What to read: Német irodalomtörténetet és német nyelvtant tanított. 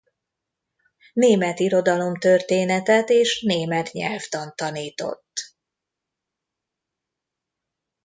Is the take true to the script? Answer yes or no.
yes